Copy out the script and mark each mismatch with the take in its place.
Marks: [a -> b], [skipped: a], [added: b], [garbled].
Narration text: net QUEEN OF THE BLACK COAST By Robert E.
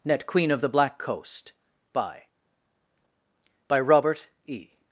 net QUEEN OF THE BLACK COAST By [added: By] Robert E.